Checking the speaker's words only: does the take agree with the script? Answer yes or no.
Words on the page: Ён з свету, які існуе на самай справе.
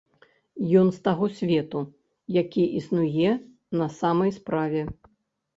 no